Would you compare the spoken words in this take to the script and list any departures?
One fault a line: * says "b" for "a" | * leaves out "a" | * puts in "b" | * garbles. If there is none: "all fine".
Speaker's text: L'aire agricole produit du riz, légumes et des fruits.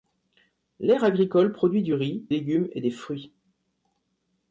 all fine